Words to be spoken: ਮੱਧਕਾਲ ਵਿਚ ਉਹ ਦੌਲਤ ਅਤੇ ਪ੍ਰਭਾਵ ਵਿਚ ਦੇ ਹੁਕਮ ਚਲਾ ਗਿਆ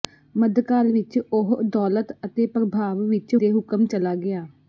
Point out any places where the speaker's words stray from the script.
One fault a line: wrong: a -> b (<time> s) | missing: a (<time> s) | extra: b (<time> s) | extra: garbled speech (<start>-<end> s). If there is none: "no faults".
no faults